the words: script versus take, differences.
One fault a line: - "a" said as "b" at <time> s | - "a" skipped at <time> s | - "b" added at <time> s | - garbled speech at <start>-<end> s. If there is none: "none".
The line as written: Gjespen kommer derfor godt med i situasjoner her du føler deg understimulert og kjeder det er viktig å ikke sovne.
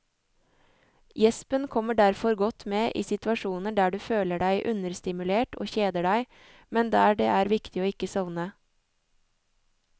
- "her" said as "der" at 3.8 s
- "deg men der" added at 6.1 s